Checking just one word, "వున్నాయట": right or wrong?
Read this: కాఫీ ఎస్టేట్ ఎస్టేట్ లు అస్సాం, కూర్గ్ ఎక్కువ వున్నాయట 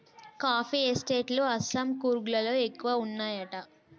right